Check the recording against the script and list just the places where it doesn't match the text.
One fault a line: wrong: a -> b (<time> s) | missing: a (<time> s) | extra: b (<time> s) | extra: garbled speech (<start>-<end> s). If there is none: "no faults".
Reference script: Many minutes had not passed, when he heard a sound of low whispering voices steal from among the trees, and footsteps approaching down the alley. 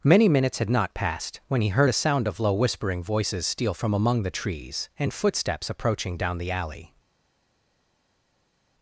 no faults